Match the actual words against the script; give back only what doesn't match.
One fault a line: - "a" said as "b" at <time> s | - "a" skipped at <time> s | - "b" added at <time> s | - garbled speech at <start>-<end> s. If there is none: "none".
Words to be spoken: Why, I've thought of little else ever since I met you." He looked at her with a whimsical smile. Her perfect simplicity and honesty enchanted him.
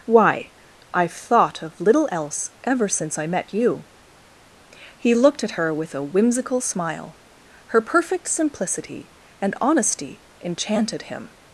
none